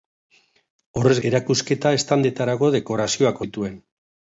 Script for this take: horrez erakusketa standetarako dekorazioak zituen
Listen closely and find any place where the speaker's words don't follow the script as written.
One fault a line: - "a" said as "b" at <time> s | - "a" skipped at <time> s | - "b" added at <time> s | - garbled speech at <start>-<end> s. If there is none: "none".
none